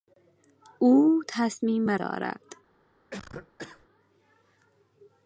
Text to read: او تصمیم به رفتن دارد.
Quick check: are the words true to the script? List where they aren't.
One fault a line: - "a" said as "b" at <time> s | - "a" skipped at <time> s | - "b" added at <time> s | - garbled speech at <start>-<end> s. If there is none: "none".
- "رفتن" skipped at 2.0 s